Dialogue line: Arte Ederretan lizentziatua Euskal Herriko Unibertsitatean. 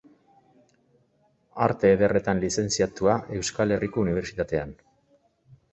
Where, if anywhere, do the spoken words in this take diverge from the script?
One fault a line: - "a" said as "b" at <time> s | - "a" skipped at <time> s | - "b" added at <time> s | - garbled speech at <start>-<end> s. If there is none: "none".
none